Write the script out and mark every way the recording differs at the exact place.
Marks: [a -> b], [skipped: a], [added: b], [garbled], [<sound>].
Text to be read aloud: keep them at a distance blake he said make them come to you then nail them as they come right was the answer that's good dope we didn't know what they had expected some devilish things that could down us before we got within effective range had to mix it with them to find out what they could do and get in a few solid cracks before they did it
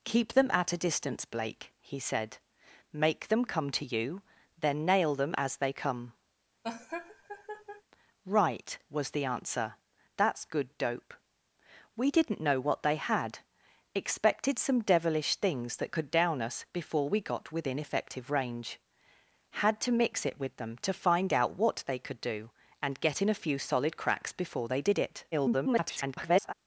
keep them at a distance blake he said make them come to you then nail them as they come [laugh] right was the answer that's good dope we didn't know what they had expected some devilish things that could down us before we got within effective range had to mix it with them to find out what they could do and get in a few solid cracks before they did it [garbled]